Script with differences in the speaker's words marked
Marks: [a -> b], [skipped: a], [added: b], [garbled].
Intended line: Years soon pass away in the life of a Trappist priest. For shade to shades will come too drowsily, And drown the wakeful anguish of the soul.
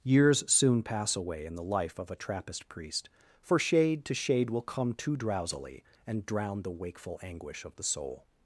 Years soon pass away in the life of a Trappist priest. For shade to [shades -> shade] will come too drowsily, And drown the wakeful anguish of the soul.